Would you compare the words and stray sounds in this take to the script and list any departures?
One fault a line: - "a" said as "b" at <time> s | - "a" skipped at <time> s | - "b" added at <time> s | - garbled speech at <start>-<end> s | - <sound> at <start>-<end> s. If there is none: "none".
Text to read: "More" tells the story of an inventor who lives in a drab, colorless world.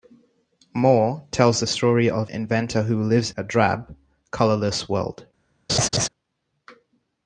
- "an" skipped at 2.3 s
- "in" skipped at 3.3 s
- laugh at 5.7-6.1 s